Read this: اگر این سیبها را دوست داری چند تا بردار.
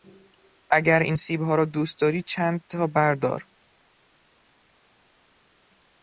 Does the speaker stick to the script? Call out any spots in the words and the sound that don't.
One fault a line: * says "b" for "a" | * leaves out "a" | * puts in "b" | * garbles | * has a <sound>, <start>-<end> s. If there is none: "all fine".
all fine